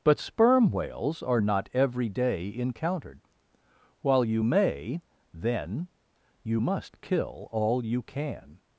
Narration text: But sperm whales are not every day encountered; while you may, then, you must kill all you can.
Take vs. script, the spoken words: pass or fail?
pass